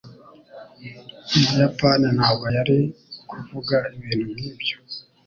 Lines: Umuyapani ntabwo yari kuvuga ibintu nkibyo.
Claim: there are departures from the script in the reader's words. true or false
false